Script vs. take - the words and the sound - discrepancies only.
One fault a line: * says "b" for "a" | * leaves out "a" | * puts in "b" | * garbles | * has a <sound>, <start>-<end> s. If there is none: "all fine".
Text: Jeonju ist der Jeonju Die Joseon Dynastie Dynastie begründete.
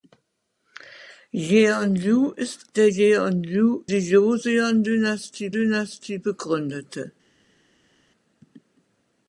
all fine